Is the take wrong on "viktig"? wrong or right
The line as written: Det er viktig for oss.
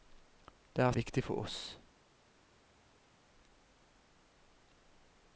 right